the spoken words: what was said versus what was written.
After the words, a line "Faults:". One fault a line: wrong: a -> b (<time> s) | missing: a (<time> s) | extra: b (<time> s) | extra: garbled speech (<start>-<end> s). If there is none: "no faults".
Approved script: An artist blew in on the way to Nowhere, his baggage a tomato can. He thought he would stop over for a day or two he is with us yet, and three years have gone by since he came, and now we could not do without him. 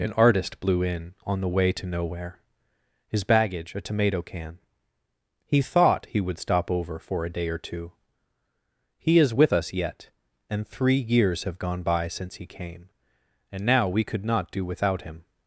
An artist blew in on the way to Nowhere, his baggage a tomato can. He thought he would stop over for a day or two he is with us yet, and three years have gone by since he came, and now we could not do without him.
Faults:
no faults